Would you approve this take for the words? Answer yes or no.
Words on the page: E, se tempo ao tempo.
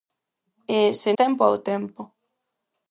yes